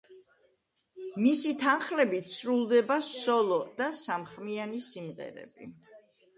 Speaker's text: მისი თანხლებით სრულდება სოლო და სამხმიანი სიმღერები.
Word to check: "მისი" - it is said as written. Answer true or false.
true